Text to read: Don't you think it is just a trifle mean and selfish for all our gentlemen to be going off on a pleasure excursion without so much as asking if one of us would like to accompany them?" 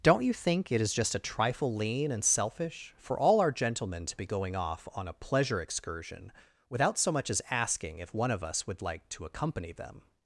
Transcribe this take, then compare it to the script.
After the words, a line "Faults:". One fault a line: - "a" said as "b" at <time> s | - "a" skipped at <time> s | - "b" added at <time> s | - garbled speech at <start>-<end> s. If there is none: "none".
Don't you think it is just a trifle lean and selfish for all our gentlemen to be going off on a pleasure excursion without so much as asking if one of us would like to accompany them?"
Faults:
- "mean" said as "lean" at 1.8 s